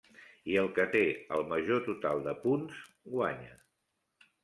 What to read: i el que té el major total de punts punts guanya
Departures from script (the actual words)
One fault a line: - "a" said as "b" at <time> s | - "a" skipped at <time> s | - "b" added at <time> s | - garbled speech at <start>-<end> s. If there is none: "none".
- "punts" skipped at 2.8 s